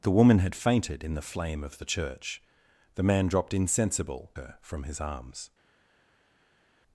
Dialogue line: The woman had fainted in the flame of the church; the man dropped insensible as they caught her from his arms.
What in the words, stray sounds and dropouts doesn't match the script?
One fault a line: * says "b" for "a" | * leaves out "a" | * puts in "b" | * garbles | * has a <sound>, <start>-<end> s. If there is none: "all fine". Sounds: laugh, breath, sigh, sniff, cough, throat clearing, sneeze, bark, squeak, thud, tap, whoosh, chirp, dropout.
* leaves out "as they caught"